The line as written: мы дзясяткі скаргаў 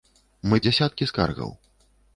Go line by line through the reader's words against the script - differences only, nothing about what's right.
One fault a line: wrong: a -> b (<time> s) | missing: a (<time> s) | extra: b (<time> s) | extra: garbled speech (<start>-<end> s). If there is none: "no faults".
no faults